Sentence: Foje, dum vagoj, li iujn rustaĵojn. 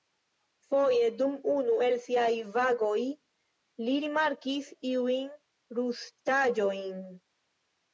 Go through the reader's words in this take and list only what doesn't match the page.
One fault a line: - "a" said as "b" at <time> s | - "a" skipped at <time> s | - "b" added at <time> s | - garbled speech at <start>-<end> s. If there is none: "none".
- "unu el siaj" added at 1.6 s
- "rimarkis" added at 4.1 s